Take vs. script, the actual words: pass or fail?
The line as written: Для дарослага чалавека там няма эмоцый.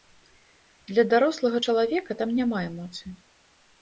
pass